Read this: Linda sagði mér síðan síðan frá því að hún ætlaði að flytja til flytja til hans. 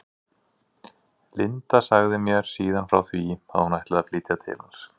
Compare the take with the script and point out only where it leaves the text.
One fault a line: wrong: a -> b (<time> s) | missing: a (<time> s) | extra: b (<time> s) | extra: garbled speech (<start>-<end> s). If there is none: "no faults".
missing: síðan (2.9 s)
missing: flytja til (4.6 s)